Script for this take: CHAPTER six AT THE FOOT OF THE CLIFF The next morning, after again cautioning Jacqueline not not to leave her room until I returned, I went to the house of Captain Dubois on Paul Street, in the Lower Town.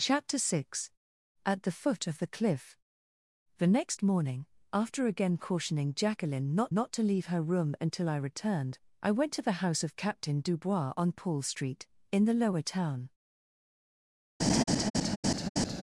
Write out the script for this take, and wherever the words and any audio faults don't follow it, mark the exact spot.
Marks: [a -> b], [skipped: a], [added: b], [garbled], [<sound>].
CHAPTER six AT THE FOOT OF THE CLIFF The next morning, after again cautioning Jacqueline not not to leave her room until I returned, I went to the house of Captain Dubois on Paul Street, in the Lower Town. [laugh]